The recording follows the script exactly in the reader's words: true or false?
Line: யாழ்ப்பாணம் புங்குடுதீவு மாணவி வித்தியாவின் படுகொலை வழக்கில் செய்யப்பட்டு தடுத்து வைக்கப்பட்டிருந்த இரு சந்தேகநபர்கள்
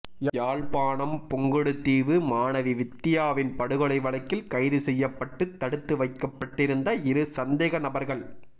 false